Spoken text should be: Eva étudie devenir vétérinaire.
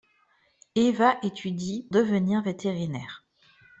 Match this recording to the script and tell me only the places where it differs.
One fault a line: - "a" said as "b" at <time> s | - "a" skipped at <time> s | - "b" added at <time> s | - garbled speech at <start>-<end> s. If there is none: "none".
none